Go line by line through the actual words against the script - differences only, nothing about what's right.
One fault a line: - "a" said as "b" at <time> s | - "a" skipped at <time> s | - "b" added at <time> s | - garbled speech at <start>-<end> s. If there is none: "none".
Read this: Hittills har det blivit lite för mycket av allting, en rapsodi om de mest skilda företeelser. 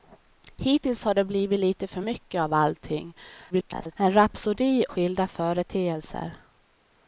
- garbled speech at 3.5-3.9 s
- "om de mest" skipped at 4.9 s